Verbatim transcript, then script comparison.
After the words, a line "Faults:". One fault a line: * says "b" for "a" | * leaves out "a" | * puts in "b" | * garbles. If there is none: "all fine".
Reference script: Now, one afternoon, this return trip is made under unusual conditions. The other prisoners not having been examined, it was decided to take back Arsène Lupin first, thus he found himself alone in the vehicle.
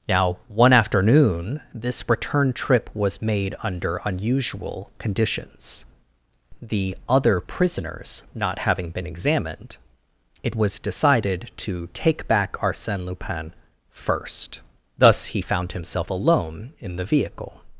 Now, one afternoon, this return trip was made under unusual conditions. The other prisoners not having been examined, it was decided to take back Arsène Lupin first, thus he found himself alone in the vehicle.
Faults:
* says "was" for "is"